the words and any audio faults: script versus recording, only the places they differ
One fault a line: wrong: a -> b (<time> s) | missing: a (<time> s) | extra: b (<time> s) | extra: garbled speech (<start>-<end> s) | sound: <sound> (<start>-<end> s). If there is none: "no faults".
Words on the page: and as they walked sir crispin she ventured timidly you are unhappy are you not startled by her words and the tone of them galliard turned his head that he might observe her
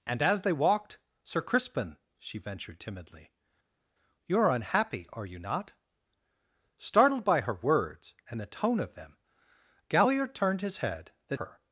missing: he might observe (11.4 s)